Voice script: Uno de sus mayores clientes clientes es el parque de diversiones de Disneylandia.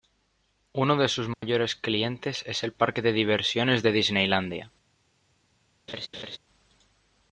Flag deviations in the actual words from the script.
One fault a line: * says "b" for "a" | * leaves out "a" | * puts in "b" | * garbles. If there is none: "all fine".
* leaves out "clientes"